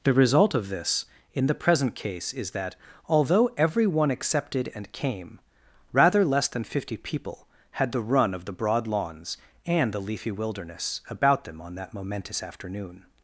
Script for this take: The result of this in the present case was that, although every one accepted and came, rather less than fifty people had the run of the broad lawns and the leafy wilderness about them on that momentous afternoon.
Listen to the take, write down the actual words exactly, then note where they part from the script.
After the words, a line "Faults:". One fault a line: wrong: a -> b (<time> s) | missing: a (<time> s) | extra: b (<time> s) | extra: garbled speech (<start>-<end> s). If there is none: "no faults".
The result of this in the present case is that, although every one accepted and came, rather less than fifty people had the run of the broad lawns and the leafy wilderness about them on that momentous afternoon.
Faults:
wrong: was -> is (2.3 s)